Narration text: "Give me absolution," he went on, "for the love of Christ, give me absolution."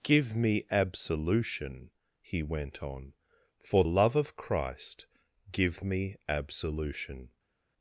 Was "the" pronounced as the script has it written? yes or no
no